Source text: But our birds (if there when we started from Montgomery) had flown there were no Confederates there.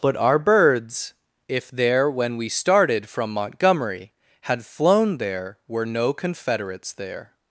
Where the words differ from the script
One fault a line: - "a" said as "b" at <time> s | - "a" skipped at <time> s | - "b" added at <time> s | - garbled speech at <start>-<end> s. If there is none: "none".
none